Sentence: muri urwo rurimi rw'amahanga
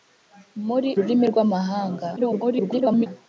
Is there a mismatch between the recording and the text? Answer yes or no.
yes